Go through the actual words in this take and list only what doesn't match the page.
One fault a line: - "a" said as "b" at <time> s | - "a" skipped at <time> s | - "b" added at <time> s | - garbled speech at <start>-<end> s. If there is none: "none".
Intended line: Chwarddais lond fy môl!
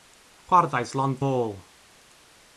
- "fy" skipped at 1.2 s